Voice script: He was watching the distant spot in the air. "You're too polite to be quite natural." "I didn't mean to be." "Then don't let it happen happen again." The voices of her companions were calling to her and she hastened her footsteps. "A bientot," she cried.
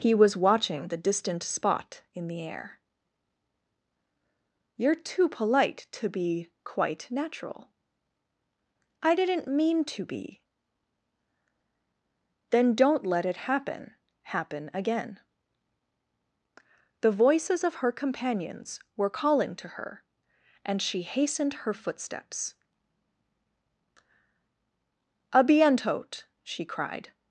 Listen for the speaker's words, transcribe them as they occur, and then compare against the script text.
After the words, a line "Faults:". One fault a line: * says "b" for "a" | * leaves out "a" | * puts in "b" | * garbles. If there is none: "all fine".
He was watching the distant spot in the air. "You're too polite to be quite natural." "I didn't mean to be." "Then don't let it happen happen again." The voices of her companions were calling to her and she hastened her footsteps. "A bientot," she cried.
Faults:
all fine